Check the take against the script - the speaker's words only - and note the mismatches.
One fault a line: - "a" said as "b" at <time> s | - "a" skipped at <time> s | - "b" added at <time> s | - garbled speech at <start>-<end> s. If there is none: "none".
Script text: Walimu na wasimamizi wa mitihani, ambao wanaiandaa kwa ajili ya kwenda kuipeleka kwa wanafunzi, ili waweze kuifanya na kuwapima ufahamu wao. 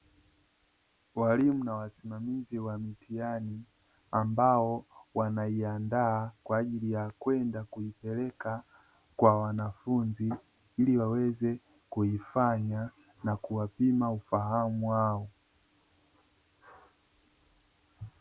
none